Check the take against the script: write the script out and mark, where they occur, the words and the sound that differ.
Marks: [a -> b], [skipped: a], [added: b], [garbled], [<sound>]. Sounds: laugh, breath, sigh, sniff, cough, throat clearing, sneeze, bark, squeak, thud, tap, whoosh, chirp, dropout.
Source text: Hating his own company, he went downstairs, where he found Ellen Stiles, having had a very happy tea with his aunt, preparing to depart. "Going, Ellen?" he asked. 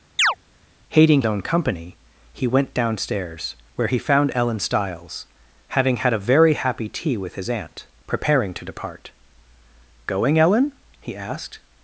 [chirp] Hating [skipped: his] own company, he went downstairs, where he found Ellen Stiles, having had a very happy tea with his aunt, preparing to depart. "Going, Ellen?" he asked.